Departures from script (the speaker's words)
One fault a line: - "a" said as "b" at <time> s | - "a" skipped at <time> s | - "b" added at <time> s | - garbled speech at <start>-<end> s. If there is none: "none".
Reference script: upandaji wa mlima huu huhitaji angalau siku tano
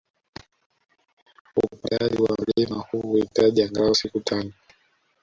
none